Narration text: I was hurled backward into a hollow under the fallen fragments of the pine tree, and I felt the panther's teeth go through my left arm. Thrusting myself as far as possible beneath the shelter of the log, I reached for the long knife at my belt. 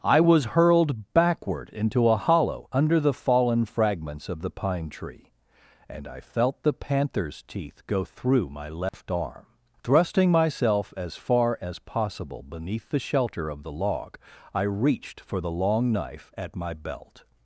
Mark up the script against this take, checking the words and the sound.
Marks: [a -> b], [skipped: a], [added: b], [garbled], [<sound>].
I was hurled backward into a hollow under the fallen fragments of the pine tree, and I felt the panther's teeth go through my left [dropout] arm. Thrusting myself as far as possible beneath the shelter of the log, I reached for the long knife at my belt.